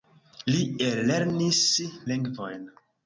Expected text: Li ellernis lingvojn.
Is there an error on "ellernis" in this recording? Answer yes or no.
no